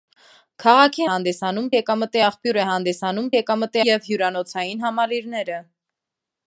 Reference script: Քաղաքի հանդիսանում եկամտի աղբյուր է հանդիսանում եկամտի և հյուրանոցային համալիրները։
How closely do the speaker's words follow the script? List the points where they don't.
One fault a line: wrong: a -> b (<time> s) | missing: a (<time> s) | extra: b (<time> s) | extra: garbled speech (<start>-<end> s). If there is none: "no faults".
no faults